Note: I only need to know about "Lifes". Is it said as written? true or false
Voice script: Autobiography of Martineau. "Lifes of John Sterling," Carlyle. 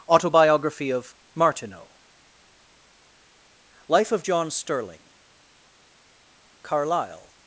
false